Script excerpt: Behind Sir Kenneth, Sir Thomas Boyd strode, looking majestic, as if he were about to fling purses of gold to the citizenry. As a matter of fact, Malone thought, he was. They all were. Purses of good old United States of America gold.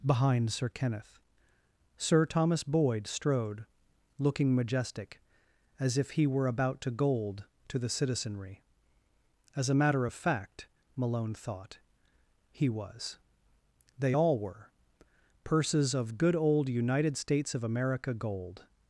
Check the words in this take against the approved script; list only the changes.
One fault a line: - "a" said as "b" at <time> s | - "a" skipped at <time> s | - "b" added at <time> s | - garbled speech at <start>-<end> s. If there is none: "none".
- "fling purses of" skipped at 6.9 s